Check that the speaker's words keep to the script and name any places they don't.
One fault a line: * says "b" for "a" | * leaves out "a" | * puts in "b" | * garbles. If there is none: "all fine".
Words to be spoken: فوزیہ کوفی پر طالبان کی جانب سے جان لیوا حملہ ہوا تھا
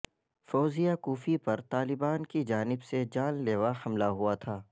all fine